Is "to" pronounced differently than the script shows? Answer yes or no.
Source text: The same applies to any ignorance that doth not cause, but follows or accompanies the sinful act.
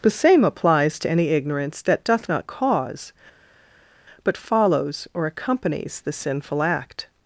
no